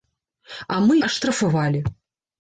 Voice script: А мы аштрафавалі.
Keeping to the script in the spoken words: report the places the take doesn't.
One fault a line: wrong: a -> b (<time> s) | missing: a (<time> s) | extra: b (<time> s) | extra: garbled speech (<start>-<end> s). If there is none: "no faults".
no faults